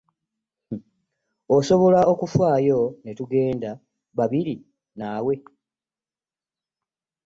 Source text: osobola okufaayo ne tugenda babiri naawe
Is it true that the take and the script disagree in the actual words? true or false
false